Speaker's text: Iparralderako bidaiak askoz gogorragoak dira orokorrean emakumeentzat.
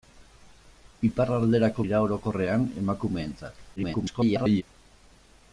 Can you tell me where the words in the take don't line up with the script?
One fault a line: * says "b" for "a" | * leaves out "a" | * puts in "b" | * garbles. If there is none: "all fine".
* leaves out "bidaiak askoz gogorragoak"
* garbles